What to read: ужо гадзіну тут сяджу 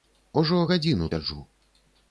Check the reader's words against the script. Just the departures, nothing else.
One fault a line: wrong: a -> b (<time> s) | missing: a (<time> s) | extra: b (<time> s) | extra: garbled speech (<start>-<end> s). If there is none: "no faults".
missing: тут (1.1 s)